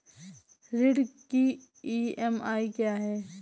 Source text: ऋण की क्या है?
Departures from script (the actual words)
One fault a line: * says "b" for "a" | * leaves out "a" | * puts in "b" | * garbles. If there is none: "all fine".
* puts in "ई.एम.आई"